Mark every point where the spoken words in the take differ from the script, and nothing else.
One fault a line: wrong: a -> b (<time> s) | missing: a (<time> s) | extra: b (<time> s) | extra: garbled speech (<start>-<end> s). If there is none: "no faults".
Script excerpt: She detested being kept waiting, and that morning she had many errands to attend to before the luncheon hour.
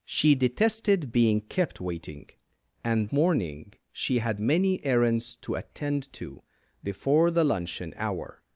missing: that (3.1 s)